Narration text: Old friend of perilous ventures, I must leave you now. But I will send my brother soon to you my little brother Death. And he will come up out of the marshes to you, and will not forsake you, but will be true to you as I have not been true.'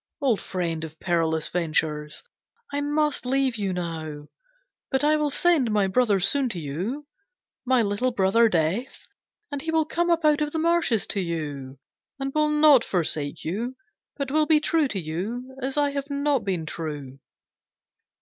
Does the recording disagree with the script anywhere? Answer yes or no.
no